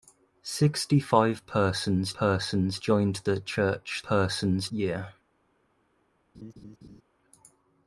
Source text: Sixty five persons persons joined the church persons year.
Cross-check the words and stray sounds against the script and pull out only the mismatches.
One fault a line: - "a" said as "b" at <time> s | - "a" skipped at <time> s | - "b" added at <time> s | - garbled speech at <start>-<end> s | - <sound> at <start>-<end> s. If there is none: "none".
- laugh at 6.3-7.0 s